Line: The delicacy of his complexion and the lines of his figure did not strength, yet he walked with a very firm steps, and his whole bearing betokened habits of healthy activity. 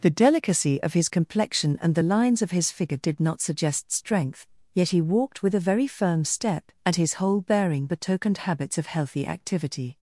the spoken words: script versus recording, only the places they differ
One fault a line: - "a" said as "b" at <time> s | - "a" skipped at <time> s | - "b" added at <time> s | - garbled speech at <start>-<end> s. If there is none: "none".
- "suggest" added at 3.4 s
- "steps" said as "step" at 6.2 s